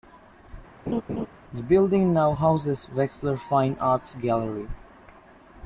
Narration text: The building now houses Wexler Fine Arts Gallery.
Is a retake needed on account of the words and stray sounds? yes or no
yes